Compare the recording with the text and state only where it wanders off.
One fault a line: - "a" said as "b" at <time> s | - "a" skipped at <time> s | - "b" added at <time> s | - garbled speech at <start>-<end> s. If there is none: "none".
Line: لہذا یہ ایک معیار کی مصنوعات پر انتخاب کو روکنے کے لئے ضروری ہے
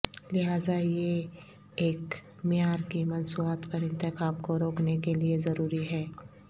none